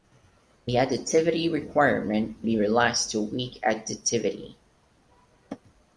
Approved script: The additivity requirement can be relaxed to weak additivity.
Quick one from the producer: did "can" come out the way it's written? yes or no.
no